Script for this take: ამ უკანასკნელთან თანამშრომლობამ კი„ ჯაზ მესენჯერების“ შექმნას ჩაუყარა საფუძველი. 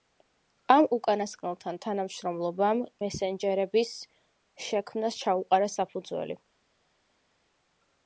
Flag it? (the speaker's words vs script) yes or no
yes